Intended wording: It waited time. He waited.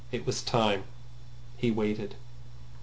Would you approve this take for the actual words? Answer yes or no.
no